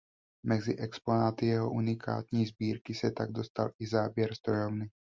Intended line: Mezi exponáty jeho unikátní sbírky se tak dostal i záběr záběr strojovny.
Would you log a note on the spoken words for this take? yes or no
yes